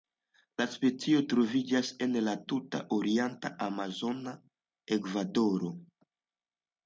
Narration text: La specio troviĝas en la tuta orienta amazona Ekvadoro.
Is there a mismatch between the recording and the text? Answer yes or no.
no